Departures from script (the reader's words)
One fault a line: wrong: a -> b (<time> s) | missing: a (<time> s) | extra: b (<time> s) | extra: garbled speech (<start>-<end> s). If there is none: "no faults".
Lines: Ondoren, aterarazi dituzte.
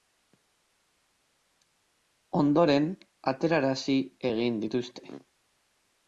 extra: egin (4.3 s)